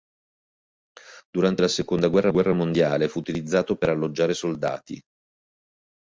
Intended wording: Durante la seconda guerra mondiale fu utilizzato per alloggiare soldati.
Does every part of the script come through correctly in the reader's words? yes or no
no